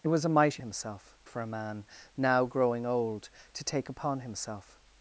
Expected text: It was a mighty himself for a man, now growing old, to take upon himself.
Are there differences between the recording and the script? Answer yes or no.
no